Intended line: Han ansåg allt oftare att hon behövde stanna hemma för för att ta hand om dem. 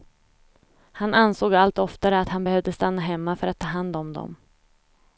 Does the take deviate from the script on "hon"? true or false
true